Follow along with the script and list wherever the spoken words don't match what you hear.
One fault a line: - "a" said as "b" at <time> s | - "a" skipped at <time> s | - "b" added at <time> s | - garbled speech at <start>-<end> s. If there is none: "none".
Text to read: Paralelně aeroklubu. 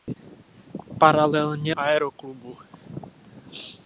none